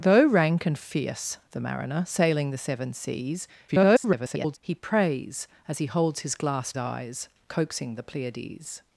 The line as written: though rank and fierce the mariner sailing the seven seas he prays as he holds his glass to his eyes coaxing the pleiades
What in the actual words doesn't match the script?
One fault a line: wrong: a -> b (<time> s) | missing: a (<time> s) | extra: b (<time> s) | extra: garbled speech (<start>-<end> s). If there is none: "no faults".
extra: garbled speech (3.7-4.6 s)
missing: to his (6.7 s)